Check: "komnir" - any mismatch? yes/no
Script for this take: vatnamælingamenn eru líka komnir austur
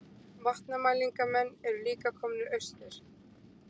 no